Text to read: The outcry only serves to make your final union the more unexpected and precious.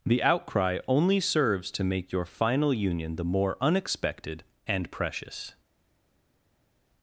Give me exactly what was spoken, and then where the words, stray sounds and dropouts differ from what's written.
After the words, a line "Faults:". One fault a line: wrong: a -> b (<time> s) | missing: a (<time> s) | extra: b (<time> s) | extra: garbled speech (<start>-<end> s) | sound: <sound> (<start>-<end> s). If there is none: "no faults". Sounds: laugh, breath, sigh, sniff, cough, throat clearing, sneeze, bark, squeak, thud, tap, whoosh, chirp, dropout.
The outcry only serves to make your final union the more unexpected and precious.
Faults:
no faults